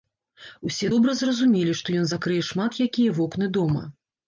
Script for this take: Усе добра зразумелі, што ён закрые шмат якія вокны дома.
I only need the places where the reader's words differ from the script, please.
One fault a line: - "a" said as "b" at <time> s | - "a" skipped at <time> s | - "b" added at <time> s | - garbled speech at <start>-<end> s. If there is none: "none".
none